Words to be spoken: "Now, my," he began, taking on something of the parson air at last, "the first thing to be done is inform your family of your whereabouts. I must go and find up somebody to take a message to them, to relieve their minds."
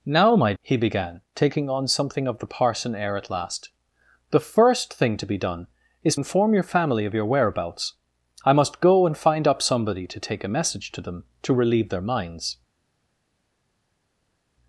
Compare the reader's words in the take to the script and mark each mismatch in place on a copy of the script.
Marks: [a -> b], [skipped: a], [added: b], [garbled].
"Now, my," he began, taking on something of the parson air at last, "the first thing to be done is inform your family of your whereabouts. I must go and find up somebody to take a message to them, to relieve their minds."